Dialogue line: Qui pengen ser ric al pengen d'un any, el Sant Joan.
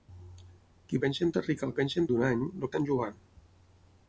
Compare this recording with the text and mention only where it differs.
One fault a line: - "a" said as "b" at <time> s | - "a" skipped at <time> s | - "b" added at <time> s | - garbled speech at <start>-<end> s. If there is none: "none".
none